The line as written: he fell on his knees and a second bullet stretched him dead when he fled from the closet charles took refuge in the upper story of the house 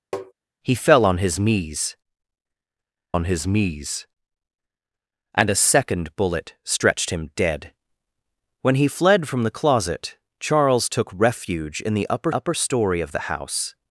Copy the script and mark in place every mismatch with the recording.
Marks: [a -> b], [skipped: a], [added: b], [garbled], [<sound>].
[tap] he fell on his knees [added: on his knees] and a second bullet stretched him dead when he fled from the closet charles took refuge in the upper [added: upper] story of the house